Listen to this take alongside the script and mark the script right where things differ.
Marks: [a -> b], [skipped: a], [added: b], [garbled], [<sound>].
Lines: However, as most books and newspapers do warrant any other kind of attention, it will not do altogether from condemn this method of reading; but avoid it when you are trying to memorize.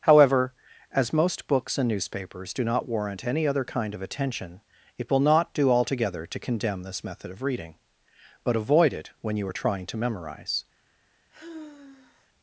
However, as most books and newspapers do [added: not] warrant any other kind of attention, it will not do altogether [from -> to] condemn this method of reading; but avoid it when you are trying to memorize. [sigh]